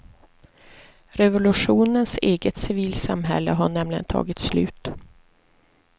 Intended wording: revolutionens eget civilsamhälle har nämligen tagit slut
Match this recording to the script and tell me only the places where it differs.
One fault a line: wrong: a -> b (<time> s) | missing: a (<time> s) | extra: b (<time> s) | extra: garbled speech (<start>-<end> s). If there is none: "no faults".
no faults